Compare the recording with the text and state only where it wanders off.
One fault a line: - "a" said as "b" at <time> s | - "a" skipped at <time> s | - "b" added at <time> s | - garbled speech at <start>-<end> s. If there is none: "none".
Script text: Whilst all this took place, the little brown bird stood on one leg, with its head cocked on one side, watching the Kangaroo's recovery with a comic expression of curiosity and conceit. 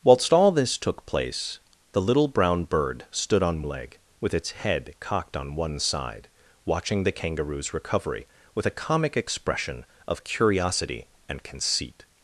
- "one" skipped at 3.6 s